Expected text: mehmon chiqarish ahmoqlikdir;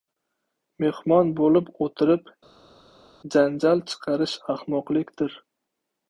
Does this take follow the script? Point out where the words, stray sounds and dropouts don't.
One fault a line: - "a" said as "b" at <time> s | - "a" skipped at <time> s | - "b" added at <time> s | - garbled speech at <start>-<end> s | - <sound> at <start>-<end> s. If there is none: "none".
- "bo‘lib o‘tirib janjal" added at 1.4 s